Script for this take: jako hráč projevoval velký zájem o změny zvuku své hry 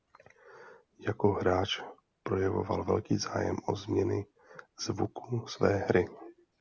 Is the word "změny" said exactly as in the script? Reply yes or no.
yes